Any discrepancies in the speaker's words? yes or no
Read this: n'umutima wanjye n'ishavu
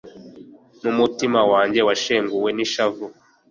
yes